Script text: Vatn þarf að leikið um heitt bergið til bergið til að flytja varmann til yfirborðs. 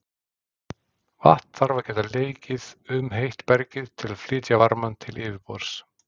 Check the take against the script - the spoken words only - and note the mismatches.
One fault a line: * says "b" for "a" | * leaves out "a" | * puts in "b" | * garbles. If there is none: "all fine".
* puts in "geta"
* leaves out "bergið til"